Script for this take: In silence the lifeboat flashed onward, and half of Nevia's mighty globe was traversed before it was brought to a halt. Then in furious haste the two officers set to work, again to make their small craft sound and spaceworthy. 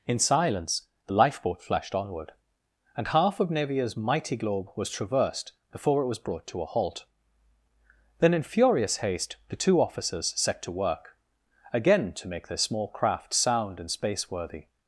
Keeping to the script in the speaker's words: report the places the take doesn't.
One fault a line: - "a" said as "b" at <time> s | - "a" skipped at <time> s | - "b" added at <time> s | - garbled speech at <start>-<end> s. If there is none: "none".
none